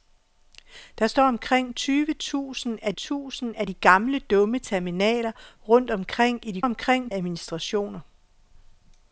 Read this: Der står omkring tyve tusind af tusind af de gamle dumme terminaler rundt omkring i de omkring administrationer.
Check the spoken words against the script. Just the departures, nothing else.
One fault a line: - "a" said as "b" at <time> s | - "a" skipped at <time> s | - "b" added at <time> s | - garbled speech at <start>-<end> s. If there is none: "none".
none